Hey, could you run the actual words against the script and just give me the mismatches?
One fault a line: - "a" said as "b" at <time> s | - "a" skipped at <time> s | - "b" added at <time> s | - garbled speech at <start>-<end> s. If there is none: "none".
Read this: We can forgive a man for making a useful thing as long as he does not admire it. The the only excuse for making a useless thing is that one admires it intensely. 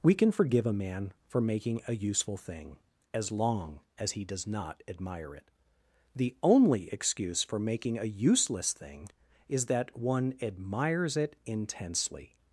- "the" skipped at 6.3 s